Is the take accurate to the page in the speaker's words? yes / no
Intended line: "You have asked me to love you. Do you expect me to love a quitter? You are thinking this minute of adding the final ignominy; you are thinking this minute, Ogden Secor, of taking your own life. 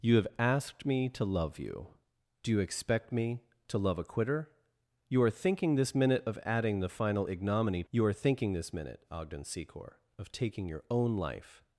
yes